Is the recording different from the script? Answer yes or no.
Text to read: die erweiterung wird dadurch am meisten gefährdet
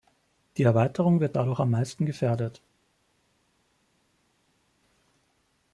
no